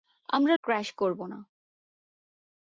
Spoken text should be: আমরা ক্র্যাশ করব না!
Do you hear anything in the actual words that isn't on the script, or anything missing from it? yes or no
no